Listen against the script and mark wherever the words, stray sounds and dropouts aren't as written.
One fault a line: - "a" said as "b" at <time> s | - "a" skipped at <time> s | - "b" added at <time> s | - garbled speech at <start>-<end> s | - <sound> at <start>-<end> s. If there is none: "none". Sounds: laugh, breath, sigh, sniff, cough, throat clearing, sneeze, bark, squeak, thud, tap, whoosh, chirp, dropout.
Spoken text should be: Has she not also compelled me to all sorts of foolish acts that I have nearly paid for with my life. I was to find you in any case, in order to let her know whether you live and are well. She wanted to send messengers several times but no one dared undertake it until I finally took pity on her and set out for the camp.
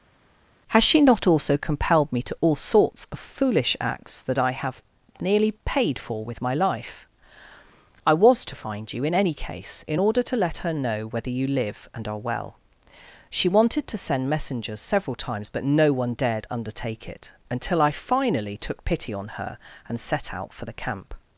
none